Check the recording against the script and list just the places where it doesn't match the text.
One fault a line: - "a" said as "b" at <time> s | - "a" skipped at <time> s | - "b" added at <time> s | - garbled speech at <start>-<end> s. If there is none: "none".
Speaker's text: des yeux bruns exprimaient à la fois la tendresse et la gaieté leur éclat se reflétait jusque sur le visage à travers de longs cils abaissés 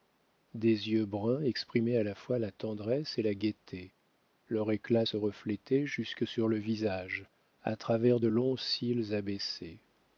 none